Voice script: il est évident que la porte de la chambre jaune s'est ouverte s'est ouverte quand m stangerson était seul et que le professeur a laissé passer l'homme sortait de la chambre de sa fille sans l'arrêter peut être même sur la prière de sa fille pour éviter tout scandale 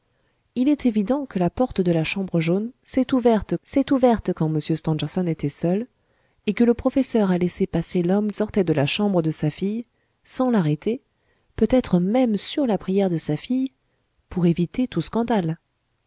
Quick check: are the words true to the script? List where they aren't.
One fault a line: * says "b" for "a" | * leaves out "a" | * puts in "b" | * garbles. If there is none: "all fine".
all fine